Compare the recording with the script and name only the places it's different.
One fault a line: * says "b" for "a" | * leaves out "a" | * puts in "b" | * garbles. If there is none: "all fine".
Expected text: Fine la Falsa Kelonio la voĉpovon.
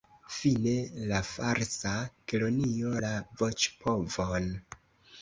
all fine